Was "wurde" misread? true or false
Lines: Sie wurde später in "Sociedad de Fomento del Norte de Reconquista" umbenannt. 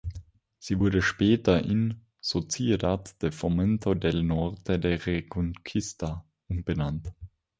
false